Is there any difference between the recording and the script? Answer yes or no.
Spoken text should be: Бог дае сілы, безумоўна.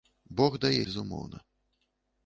yes